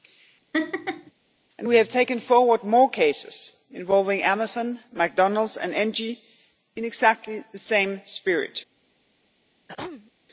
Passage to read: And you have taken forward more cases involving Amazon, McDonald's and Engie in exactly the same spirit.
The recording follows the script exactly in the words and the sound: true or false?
false